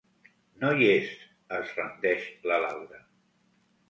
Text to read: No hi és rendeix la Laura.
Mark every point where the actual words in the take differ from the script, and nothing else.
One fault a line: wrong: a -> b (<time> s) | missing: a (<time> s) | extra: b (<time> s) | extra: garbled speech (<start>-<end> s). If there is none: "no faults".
extra: es (1.6 s)